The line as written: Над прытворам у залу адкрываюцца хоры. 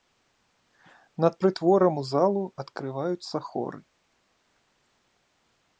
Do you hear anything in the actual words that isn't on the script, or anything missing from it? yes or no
no